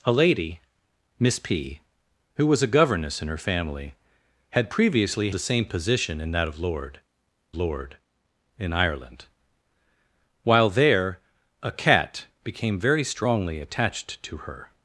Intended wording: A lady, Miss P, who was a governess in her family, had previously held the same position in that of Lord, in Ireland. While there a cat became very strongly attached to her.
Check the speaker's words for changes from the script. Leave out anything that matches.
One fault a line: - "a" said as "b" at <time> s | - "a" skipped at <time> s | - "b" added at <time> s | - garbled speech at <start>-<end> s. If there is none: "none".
- "held" skipped at 5.3 s
- "Lord" added at 7.6 s